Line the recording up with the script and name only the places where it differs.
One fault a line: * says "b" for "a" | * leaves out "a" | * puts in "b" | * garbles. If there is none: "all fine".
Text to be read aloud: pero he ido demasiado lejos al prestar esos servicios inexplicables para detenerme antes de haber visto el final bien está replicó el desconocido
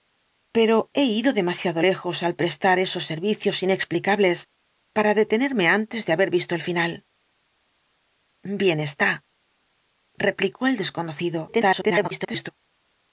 * garbles